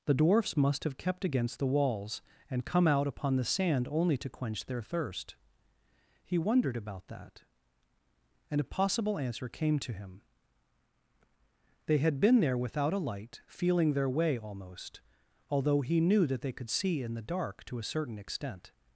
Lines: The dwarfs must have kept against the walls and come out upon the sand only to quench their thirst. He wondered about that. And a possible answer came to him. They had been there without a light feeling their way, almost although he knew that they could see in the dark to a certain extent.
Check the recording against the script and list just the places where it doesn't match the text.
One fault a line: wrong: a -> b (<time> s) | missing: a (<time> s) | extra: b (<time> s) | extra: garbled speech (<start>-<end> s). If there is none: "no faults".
no faults